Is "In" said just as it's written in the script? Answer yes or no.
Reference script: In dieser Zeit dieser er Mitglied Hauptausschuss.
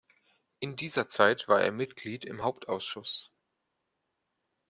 yes